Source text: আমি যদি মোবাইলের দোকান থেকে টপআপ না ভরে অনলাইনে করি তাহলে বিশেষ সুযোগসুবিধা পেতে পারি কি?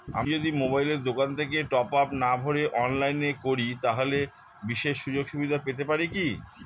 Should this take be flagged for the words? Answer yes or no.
no